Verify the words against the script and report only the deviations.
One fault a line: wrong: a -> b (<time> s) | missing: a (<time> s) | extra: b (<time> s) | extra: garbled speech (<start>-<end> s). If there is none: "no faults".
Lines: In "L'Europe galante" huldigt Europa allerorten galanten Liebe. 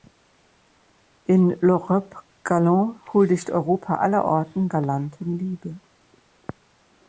no faults